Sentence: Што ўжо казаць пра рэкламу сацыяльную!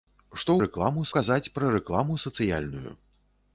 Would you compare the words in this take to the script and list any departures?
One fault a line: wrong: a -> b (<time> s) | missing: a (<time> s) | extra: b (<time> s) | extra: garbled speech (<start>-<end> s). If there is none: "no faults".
wrong: ўжо -> рэкламу (0.6 s)